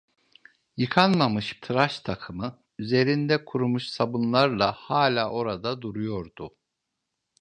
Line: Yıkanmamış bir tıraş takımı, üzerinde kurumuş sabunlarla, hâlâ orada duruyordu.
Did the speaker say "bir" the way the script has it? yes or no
no